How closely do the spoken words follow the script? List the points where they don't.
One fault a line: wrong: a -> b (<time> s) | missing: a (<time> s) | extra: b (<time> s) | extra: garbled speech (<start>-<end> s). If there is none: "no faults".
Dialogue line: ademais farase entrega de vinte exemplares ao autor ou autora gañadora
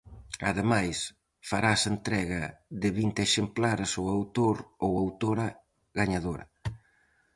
no faults